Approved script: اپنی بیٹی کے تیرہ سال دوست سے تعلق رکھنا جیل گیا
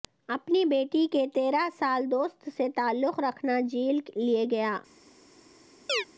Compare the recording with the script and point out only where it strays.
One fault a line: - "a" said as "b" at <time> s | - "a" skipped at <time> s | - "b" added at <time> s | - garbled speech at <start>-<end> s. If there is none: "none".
- "لے" added at 4.2 s